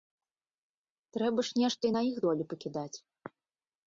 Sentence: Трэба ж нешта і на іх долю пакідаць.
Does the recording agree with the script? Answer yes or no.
yes